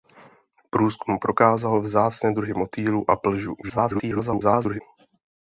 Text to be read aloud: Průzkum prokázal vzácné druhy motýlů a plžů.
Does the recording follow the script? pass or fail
fail